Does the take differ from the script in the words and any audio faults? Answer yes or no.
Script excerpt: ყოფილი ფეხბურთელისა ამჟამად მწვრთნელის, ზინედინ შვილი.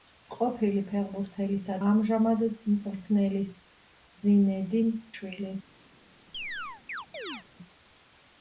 yes